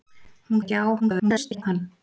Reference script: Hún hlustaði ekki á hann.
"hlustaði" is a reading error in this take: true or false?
true